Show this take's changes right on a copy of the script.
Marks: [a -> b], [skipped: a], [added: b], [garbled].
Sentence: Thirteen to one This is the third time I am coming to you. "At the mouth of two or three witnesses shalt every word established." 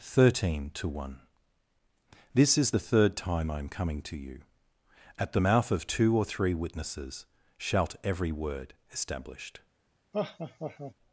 Thirteen to one This is the third time I am coming to you. "At the mouth of two or three witnesses shalt every word established."